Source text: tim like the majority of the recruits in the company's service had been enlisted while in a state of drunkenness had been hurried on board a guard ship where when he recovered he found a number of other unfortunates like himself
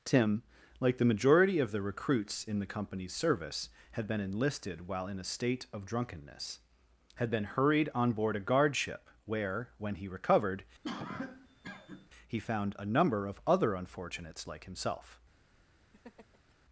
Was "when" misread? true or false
false